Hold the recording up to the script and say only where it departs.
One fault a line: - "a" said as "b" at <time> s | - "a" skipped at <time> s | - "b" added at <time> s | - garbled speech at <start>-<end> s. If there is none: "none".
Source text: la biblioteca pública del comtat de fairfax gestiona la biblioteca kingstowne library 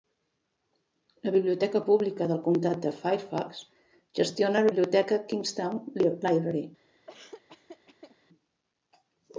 - "la" skipped at 4.7 s